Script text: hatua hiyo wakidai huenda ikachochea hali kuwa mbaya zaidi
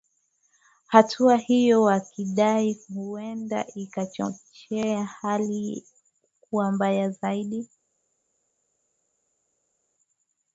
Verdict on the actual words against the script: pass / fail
pass